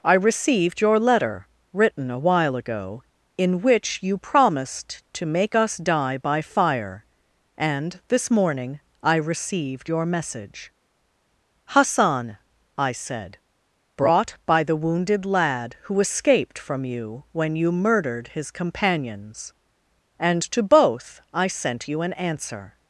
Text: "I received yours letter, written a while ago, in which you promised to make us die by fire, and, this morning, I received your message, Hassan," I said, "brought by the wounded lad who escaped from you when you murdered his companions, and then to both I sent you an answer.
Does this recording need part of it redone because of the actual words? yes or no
yes